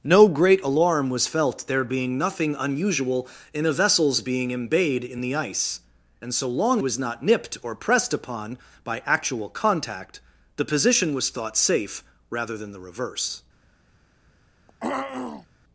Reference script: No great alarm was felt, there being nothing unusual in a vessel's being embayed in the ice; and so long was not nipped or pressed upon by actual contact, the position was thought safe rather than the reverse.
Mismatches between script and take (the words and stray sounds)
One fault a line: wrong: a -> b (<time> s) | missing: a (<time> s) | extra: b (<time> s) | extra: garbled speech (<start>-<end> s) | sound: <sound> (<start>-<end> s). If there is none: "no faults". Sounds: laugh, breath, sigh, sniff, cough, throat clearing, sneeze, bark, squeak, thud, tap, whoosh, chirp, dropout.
sound: throat clearing (14.7-15.5 s)